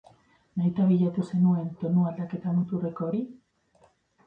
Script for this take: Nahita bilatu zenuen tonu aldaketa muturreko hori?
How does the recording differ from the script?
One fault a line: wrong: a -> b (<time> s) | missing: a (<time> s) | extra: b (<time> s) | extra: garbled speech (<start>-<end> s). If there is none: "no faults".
no faults